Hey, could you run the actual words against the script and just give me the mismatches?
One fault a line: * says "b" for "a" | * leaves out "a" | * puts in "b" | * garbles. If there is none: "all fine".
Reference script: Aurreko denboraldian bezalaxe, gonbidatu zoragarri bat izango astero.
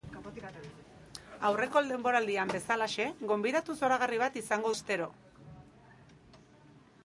all fine